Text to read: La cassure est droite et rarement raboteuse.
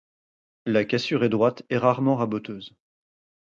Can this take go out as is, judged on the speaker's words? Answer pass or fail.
pass